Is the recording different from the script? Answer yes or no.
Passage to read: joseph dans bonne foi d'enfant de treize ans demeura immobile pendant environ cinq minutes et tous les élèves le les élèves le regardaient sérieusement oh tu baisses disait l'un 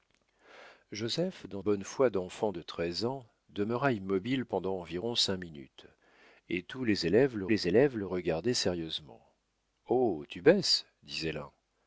no